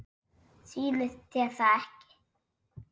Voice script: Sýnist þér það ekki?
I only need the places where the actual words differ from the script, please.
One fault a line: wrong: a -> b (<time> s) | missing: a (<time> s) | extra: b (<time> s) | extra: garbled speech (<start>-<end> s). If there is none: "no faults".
no faults